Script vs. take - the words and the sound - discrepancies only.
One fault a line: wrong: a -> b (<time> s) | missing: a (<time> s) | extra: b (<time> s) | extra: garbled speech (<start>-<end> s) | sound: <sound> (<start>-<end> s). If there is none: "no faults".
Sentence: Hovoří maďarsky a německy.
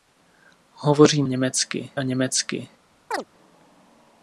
wrong: maďarsky -> německy (1.2 s)
sound: chirp (3.1-3.2 s)